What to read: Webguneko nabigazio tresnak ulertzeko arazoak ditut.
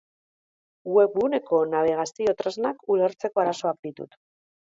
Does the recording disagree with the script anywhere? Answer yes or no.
no